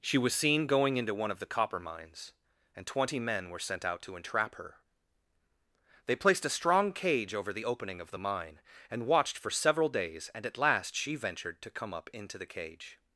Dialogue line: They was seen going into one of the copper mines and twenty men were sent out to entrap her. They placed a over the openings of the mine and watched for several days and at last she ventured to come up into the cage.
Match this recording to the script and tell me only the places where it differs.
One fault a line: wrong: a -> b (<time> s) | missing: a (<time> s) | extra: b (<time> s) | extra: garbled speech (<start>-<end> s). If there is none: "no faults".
wrong: They -> She (0.0 s)
extra: strong cage (6.5 s)
wrong: openings -> opening (7.6 s)